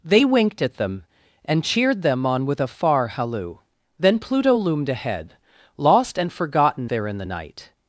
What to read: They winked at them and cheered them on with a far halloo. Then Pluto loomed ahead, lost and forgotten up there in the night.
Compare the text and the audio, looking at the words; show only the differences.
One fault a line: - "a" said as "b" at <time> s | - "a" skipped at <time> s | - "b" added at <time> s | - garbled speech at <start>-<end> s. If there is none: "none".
- "up" skipped at 6.9 s